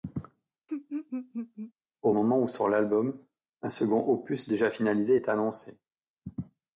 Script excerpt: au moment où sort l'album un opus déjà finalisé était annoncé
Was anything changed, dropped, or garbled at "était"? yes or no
yes